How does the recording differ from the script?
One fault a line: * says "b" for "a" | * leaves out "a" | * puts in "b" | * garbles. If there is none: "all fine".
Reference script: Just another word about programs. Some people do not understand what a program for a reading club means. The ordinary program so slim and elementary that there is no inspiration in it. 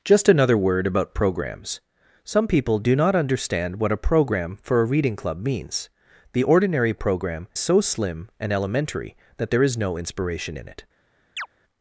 all fine